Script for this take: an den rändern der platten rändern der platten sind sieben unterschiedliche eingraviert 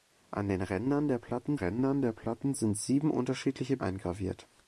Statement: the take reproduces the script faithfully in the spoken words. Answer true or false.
true